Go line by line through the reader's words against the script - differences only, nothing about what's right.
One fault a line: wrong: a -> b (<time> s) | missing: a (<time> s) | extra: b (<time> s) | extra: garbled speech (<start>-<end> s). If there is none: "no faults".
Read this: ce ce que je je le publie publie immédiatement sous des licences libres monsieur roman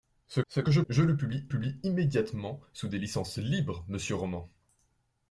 no faults